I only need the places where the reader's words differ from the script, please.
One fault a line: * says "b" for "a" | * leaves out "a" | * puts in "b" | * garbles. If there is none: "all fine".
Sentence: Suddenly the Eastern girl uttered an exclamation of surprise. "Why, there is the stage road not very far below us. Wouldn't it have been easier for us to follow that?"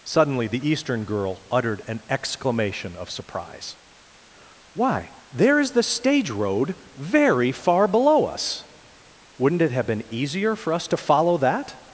* leaves out "not"